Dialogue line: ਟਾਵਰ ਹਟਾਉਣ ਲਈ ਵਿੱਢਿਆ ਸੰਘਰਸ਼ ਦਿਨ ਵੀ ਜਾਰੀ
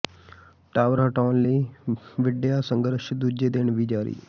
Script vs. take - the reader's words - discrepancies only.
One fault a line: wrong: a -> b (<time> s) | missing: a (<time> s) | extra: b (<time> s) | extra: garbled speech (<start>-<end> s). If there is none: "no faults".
extra: ਦੂਜੇ (3.1 s)